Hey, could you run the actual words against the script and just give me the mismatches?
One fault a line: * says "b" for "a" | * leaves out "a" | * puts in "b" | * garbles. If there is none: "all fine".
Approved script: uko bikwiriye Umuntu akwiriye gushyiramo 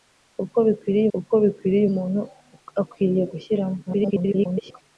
* puts in "uko bikwiriye"
* garbles